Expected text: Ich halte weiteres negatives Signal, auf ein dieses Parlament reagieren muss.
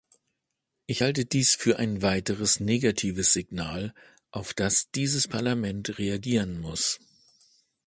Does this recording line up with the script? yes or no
no